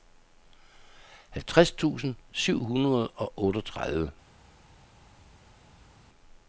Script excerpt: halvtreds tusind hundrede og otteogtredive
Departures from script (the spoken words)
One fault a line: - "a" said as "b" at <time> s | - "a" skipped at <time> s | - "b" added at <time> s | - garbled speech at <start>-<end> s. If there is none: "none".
- "syv" added at 2.3 s